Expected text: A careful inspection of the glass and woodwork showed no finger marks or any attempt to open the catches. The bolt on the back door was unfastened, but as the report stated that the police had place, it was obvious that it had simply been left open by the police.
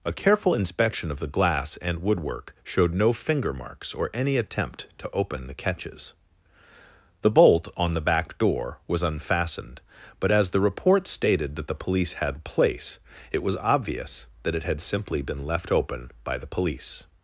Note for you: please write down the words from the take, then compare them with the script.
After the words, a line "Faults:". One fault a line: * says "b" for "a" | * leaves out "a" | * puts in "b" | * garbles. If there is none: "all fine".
A careful inspection of the glass and woodwork showed no finger marks or any attempt to open the catches. The bolt on the back door was unfastened, but as the report stated that the police had place, it was obvious that it had simply been left open by the police.
Faults:
all fine